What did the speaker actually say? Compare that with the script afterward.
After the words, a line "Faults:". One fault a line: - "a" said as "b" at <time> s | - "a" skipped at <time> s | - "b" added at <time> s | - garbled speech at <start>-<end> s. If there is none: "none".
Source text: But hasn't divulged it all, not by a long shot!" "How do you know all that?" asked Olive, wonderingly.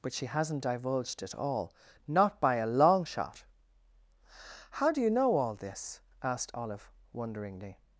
But she hasn't divulged it all, not by a long shot!" "How do you know all this?" asked Olive, wonderingly.
Faults:
- "she" added at 0.1 s
- "that" said as "this" at 5.6 s